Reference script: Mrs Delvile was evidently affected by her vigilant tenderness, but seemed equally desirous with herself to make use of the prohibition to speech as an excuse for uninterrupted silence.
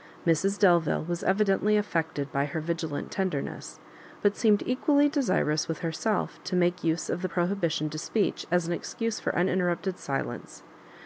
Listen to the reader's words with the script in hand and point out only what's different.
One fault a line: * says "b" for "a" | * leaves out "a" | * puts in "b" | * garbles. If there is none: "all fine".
all fine